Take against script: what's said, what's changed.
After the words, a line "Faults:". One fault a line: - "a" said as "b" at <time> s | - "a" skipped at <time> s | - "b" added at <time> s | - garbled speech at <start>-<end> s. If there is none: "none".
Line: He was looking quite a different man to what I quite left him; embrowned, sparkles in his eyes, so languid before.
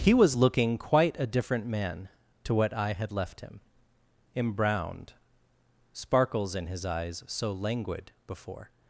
He was looking quite a different man to what I had left him; embrowned, sparkles in his eyes, so languid before.
Faults:
- "quite" said as "had" at 2.9 s